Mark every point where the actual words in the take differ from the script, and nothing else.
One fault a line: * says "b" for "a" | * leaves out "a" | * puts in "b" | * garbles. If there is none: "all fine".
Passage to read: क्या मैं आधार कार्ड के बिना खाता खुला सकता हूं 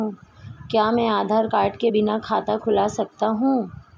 all fine